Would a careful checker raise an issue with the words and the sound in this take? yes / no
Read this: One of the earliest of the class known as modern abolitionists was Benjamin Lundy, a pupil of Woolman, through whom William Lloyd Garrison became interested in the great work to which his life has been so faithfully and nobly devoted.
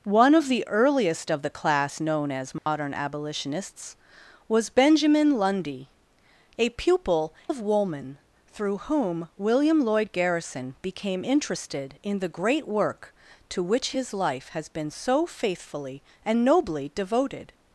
yes